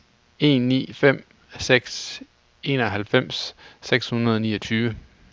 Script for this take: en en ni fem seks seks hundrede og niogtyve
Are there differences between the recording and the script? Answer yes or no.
yes